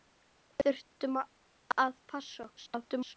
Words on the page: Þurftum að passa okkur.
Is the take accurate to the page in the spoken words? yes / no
no